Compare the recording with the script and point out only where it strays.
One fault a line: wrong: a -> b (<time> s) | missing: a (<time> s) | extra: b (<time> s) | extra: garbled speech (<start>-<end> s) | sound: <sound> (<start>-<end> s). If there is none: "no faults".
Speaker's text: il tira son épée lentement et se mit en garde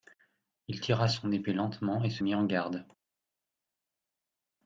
no faults